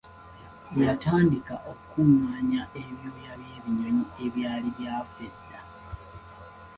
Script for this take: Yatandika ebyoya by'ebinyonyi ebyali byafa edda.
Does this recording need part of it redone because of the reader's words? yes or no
yes